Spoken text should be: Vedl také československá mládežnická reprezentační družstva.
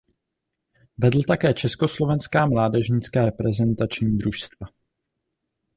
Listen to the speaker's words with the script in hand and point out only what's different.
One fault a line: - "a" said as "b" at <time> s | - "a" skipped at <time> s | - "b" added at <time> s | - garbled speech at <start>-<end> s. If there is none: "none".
none